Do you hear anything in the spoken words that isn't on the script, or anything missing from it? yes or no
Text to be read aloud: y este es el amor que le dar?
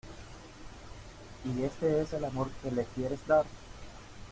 yes